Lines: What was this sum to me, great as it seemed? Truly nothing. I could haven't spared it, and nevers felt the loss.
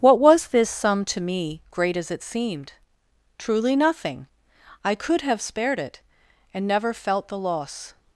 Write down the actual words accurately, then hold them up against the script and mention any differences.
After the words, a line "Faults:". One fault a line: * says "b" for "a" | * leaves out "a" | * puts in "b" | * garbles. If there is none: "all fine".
What was this sum to me, great as it seemed? Truly nothing. I could have spared it, and never felt the loss.
Faults:
* says "have" for "haven't"
* says "never" for "nevers"